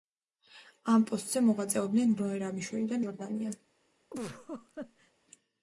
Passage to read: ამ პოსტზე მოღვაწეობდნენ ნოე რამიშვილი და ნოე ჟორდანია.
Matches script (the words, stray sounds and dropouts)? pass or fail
fail